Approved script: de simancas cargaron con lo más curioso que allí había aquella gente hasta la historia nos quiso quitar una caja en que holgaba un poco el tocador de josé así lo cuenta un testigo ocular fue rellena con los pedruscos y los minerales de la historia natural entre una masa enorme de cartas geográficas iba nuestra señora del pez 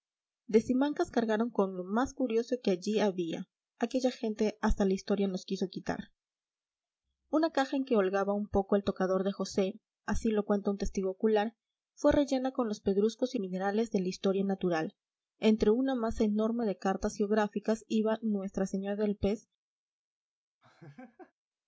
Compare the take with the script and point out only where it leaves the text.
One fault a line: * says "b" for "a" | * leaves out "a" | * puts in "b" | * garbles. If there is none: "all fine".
* leaves out "los"